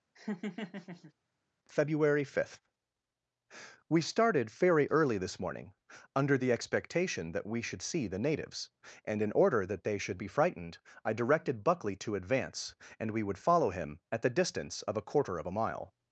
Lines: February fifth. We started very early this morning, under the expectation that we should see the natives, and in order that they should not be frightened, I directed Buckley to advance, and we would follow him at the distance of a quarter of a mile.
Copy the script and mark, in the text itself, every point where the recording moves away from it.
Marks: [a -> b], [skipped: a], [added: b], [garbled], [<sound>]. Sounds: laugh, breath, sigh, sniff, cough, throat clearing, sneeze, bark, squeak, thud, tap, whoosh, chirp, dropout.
[laugh] February fifth. We started very early this morning, under the expectation that we should see the natives, and in order that they should [skipped: not] be frightened, I directed Buckley to advance, and we would follow him at the distance of a quarter of a mile.